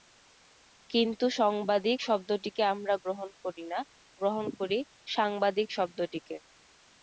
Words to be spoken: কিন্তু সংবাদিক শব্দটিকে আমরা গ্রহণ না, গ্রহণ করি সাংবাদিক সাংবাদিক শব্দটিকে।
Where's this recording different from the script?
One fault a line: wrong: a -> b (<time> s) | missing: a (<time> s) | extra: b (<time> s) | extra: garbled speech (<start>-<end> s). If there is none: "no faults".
extra: করি (3.4 s)
missing: সাংবাদিক (5.7 s)